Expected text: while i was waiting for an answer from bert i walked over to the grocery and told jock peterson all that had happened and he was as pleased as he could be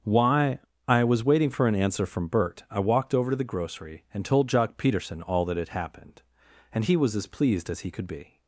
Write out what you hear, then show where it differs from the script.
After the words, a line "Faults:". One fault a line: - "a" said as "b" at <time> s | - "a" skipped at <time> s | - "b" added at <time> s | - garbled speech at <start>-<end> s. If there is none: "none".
why i was waiting for an answer from bert i walked over to the grocery and told jock peterson all that had happened and he was as pleased as he could be
Faults:
- "while" said as "why" at 0.0 s